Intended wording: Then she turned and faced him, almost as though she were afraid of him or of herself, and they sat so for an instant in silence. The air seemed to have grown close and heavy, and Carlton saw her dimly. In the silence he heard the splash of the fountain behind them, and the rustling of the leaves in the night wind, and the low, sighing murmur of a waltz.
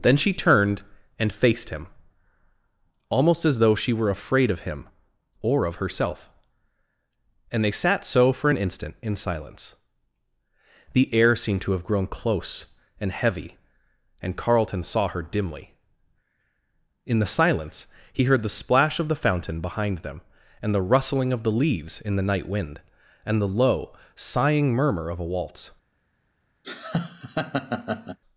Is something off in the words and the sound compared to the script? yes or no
yes